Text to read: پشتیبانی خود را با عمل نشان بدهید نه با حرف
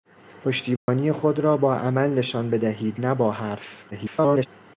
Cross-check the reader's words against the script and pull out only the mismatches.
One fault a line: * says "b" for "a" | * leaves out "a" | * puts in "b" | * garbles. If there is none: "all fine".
* garbles